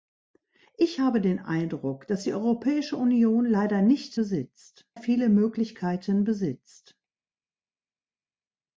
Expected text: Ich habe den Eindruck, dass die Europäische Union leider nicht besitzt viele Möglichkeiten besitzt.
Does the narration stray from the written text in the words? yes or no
no